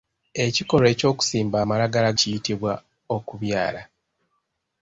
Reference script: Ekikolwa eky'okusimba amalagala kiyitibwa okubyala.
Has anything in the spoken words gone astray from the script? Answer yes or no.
no